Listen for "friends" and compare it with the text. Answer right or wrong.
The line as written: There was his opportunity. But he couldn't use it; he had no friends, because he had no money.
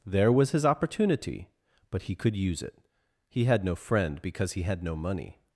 wrong